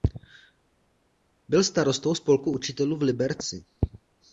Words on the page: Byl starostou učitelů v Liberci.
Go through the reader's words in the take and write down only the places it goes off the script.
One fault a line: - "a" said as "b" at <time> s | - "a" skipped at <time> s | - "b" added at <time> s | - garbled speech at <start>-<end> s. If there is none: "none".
- "spolku" added at 2.1 s